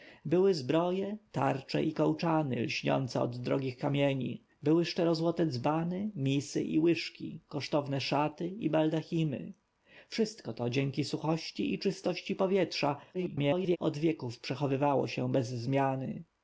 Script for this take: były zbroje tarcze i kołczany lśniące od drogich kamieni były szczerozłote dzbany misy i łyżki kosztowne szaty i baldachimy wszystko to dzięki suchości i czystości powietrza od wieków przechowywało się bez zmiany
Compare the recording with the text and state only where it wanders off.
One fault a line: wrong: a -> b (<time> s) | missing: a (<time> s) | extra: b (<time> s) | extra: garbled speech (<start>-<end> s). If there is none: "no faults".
extra: garbled speech (13.1-13.8 s)